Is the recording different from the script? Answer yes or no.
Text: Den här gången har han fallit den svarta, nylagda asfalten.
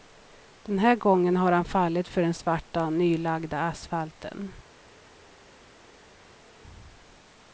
yes